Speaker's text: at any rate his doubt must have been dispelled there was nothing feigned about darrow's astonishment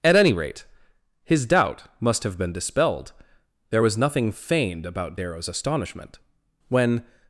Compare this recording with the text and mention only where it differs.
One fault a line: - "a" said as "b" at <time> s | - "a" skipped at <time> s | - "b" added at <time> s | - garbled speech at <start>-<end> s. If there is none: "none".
- "when" added at 6.7 s